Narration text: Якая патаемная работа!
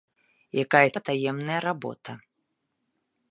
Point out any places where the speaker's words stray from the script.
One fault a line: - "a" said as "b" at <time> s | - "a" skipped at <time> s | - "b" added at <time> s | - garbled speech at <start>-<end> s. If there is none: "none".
none